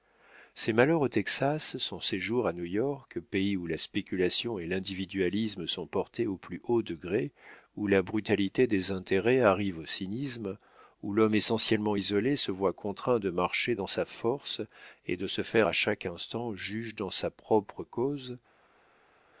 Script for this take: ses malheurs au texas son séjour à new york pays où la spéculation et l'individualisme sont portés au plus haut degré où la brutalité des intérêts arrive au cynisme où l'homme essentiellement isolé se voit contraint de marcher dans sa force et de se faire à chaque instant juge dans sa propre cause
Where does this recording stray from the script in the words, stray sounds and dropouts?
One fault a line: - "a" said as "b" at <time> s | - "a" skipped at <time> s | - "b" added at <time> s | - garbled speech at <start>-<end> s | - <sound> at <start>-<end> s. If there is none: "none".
none